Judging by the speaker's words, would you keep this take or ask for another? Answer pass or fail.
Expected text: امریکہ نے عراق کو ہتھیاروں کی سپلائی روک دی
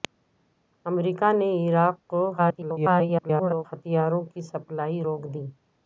fail